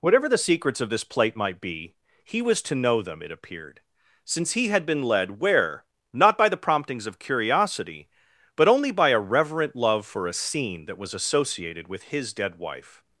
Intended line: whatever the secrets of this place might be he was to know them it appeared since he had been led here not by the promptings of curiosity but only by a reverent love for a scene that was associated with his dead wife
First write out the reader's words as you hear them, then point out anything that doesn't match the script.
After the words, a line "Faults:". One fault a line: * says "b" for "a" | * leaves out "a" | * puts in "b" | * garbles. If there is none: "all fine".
whatever the secrets of this plate might be he was to know them it appeared since he had been led where not by the promptings of curiosity but only by a reverent love for a scene that was associated with his dead wife
Faults:
* says "plate" for "place"
* says "where" for "here"